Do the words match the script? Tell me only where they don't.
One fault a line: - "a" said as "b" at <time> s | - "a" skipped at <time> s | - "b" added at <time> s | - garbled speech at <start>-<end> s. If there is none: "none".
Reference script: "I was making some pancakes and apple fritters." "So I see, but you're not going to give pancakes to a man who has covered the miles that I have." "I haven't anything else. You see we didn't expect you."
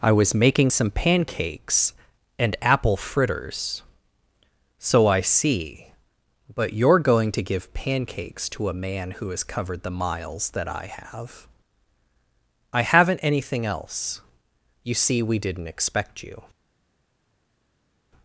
- "not" skipped at 7.0 s